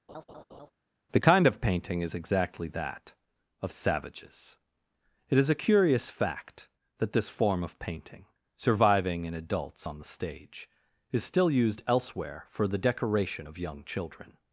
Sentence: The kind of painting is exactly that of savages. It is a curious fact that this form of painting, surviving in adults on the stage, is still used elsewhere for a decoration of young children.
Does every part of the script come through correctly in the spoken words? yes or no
no